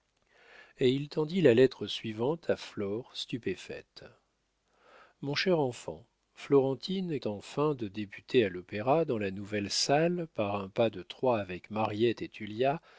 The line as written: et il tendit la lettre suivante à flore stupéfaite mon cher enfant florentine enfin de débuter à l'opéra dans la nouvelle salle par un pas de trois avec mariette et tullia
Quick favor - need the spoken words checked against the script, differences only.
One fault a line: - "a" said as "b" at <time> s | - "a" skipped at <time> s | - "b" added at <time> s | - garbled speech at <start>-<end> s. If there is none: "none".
none